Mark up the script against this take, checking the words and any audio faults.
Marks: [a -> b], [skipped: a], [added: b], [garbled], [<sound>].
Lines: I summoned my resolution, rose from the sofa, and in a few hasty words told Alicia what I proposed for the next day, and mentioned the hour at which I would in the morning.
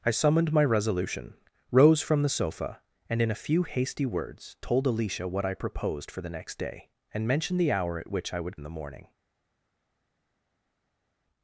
I summoned my resolution, rose from the sofa, and in a few hasty words told Alicia what I proposed for the next day, and mentioned the hour at which I would in the morning.